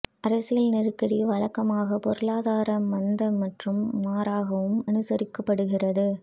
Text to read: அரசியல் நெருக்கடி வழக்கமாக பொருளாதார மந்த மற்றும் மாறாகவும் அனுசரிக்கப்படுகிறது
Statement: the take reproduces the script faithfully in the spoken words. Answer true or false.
true